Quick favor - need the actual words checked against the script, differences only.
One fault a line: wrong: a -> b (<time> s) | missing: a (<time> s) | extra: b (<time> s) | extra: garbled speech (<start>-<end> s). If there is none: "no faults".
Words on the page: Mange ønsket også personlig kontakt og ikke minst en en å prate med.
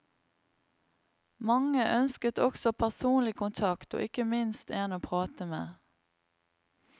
missing: en (5.0 s)